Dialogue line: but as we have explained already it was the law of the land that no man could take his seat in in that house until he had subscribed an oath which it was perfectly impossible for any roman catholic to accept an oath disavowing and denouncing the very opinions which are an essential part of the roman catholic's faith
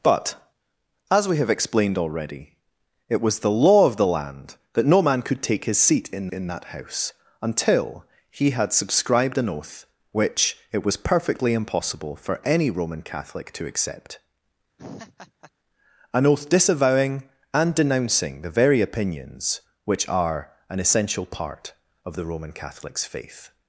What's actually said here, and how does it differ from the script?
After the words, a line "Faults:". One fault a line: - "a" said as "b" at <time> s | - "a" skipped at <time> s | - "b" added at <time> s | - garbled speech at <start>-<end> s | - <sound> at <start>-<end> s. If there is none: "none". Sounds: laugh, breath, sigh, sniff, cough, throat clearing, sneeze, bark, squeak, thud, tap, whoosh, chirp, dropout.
but as we have explained already it was the law of the land that no man could take his seat in in that house until he had subscribed an oath which it was perfectly impossible for any roman catholic to accept an oath disavowing and denouncing the very opinions which are an essential part of the roman catholic's faith
Faults:
- laugh at 14.8-15.5 s